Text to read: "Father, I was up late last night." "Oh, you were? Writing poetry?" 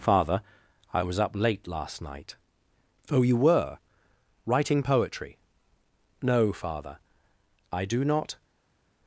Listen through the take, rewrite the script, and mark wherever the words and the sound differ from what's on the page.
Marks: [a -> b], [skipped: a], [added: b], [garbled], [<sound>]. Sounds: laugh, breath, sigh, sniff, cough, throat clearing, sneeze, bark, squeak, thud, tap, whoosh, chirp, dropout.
"Father, I was up late last night." "Oh, you were? Writing poetry?" [added: No Father I do not]